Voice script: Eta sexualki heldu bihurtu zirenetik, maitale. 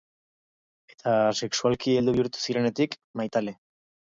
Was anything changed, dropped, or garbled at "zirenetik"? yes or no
no